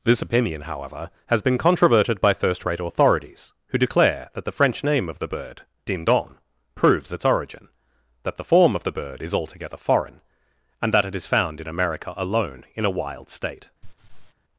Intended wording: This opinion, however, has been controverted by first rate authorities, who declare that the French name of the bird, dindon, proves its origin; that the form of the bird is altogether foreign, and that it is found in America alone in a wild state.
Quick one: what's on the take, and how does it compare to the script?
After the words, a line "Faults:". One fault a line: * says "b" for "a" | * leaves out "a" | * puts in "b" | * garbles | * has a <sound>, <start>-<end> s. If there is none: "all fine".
This opinion, however, has been controverted by first rate authorities, who declare that the French name of the bird, dindon, proves its origin; that the form of the bird is altogether foreign, and that it is found in America alone in a wild state.
Faults:
* has a laugh, 13.8-14.3 s